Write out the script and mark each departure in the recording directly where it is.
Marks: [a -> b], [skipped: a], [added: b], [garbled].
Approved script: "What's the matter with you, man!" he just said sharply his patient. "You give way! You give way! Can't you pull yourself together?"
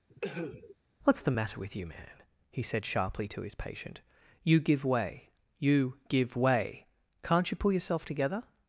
"What's the matter with you, man!" he [skipped: just] said sharply [added: to] his patient. "You give way! You give way! Can't you pull yourself together?"